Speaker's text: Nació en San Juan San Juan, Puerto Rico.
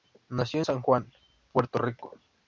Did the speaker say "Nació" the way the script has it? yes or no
yes